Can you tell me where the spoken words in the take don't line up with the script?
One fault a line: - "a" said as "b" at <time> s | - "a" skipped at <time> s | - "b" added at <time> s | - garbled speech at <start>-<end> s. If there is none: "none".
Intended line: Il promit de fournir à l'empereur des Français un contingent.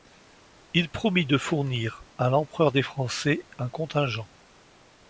none